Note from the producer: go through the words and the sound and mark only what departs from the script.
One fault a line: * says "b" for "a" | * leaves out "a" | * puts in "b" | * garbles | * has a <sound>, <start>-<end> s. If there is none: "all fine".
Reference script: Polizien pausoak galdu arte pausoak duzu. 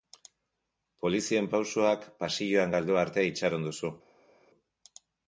* puts in "pasilloan"
* says "itxaron" for "pausoak"